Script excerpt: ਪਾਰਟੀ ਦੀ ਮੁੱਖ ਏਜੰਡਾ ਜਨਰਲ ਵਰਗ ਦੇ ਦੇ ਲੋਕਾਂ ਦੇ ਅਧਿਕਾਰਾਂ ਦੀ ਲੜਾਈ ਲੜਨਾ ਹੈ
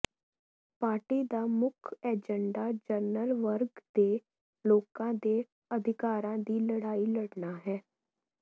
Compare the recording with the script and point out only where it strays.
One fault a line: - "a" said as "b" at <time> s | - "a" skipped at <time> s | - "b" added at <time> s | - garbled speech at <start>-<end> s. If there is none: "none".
- "ਦੀ" said as "ਦਾ" at 1.3 s
- "ਦੇ" skipped at 4.2 s